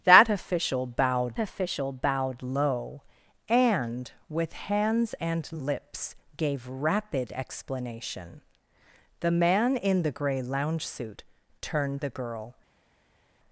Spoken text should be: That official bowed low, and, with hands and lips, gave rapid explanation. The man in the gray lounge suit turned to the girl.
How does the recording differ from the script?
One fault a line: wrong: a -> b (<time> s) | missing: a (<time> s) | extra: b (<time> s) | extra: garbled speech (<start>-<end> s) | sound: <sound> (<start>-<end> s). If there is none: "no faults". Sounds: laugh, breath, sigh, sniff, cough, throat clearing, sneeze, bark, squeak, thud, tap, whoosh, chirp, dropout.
extra: official bowed (1.4 s)
missing: to (12.0 s)